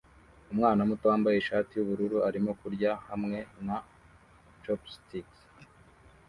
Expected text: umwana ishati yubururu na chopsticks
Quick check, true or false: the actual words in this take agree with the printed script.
false